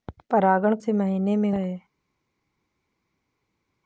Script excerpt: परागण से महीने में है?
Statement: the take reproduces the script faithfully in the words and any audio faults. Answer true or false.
true